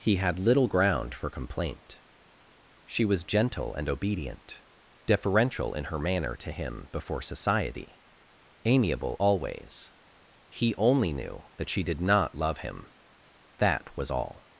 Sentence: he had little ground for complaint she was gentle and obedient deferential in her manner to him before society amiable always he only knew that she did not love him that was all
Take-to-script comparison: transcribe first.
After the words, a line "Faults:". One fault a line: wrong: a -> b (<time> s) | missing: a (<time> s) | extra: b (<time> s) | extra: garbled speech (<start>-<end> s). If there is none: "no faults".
he had little ground for complaint she was gentle and obedient deferential in her manner to him before society amiable always he only knew that she did not love him that was all
Faults:
no faults